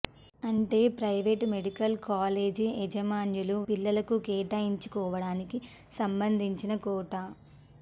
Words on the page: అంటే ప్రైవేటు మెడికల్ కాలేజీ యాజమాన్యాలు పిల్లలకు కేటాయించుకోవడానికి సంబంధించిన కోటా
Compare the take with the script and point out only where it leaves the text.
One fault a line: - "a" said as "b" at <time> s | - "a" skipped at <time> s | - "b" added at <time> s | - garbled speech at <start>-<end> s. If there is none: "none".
none